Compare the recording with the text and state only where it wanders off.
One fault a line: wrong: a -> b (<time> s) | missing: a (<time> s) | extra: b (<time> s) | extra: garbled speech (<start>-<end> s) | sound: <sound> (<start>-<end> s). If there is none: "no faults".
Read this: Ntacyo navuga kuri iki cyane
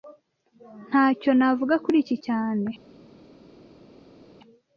no faults